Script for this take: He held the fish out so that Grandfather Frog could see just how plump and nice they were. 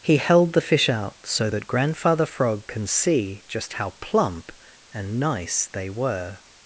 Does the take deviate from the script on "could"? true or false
true